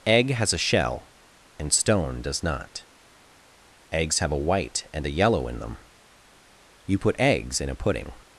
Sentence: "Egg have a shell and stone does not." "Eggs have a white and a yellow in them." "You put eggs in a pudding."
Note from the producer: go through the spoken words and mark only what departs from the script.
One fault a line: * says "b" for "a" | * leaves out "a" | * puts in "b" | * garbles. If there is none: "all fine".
* says "has" for "have"